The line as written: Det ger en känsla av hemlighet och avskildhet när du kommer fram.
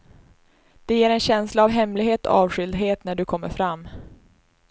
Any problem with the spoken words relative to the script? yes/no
no